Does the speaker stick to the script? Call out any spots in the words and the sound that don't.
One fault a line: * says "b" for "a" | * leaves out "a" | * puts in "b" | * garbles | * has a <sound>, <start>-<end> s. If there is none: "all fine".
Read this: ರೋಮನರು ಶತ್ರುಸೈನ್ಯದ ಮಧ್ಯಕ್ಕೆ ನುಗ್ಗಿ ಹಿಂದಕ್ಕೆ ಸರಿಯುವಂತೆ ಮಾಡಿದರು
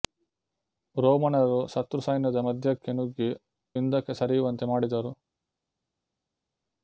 all fine